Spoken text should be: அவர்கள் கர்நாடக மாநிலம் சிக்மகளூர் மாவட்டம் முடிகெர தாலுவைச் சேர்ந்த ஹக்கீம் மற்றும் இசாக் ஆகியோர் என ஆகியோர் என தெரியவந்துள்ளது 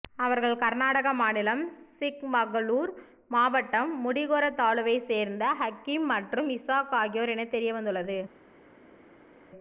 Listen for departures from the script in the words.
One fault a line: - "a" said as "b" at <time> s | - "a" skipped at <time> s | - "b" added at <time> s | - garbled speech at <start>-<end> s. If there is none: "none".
- "ஆகியோர் என" skipped at 7.5 s